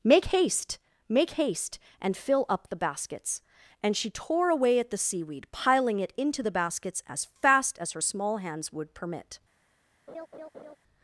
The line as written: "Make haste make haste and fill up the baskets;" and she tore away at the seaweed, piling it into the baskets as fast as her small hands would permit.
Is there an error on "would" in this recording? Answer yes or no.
no